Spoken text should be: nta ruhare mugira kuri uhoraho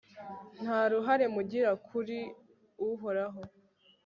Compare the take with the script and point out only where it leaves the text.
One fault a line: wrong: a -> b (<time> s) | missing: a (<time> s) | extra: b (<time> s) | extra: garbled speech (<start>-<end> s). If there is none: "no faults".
no faults